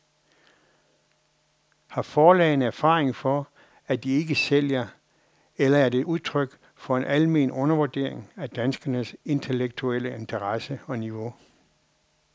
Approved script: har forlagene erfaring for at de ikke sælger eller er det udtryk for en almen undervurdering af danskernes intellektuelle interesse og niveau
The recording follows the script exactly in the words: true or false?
true